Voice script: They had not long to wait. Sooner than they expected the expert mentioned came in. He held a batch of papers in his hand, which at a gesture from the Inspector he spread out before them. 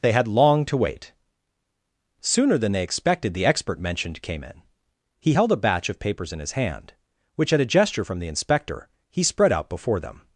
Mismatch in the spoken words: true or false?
true